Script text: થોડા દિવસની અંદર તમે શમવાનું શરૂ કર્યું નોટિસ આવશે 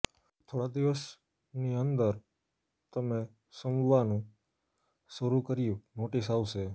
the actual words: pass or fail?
pass